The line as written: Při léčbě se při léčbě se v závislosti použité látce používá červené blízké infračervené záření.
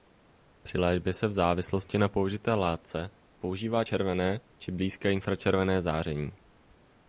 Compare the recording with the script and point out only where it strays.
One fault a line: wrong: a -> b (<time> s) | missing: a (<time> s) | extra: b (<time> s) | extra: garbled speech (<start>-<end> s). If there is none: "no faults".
missing: při léčbě se (1.3 s)
extra: na (2.0 s)
extra: či (4.6 s)